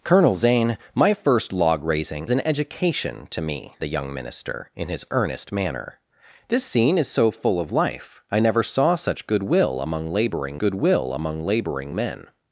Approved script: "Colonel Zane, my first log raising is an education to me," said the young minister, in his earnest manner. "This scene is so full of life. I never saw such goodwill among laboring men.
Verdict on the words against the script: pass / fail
fail